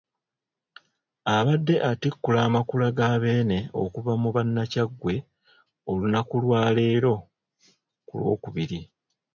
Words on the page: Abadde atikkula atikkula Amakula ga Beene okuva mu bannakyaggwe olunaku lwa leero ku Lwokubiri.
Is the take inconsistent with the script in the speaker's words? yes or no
yes